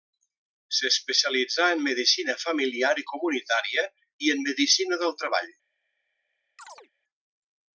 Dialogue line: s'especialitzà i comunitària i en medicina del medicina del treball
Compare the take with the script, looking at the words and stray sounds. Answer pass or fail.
fail